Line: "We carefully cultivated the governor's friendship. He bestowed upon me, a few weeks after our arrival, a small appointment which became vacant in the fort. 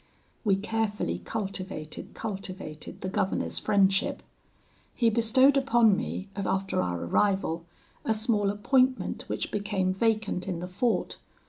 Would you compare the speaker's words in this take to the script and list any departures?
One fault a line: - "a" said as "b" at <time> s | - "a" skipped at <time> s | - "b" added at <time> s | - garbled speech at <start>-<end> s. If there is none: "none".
- "cultivated" added at 2.1 s
- "few weeks" skipped at 6.4 s